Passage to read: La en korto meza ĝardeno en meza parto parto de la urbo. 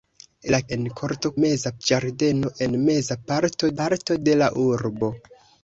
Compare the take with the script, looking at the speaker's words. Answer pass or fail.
pass